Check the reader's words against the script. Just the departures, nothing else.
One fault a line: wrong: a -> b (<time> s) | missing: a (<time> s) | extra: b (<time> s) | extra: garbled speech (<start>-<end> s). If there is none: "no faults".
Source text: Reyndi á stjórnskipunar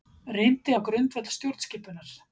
extra: grundvöll (0.9 s)